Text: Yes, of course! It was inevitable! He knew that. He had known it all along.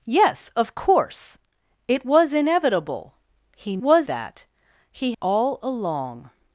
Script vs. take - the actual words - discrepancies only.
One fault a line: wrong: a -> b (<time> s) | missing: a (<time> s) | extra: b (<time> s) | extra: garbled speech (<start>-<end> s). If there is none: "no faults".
wrong: knew -> was (3.8 s)
missing: had known it (5.1 s)